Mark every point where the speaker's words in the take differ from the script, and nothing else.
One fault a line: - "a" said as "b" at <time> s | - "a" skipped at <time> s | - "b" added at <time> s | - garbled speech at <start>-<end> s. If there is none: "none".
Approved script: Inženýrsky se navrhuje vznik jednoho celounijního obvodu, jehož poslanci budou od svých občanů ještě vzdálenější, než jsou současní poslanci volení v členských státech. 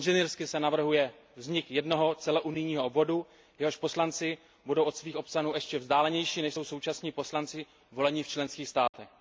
none